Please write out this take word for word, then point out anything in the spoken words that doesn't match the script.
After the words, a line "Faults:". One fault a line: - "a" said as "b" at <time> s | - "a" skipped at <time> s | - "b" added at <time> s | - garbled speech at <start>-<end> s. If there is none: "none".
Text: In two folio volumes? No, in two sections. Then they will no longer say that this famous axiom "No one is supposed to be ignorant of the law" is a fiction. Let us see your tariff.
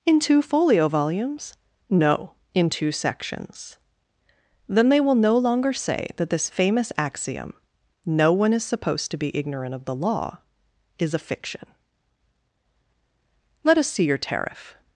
In two folio volumes? No, in two sections. Then they will no longer say that this famous axiom "No one is supposed to be ignorant of the law" is a fiction. Let us see your tariff.
Faults:
none